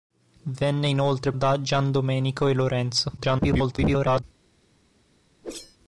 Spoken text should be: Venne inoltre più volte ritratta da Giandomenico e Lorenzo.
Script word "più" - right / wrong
wrong